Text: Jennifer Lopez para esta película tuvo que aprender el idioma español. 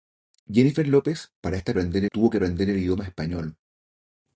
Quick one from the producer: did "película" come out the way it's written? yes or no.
no